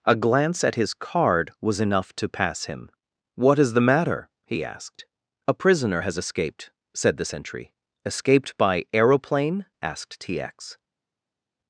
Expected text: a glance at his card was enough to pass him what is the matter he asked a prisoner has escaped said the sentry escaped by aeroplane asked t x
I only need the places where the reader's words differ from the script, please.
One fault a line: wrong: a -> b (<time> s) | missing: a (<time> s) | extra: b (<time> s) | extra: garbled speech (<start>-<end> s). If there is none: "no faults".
no faults